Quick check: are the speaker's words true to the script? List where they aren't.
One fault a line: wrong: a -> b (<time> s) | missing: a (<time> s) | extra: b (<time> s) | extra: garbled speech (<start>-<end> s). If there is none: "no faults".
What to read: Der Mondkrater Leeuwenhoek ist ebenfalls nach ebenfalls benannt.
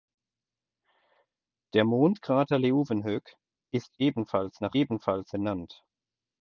no faults